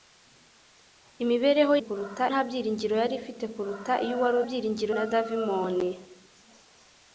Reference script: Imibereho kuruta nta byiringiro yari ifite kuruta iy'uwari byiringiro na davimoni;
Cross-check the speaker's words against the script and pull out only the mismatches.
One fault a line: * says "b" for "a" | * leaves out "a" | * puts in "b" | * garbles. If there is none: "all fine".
all fine